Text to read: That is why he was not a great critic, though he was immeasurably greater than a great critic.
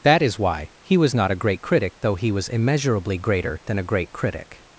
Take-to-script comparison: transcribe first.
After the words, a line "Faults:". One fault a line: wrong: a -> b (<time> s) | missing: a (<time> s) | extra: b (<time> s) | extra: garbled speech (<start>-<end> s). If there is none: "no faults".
That is why he was not a great critic, though he was immeasurably greater than a great critic.
Faults:
no faults